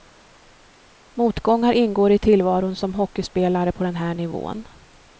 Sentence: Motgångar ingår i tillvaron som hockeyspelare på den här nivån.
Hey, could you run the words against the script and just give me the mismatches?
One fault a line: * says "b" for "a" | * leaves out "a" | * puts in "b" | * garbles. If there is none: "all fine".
all fine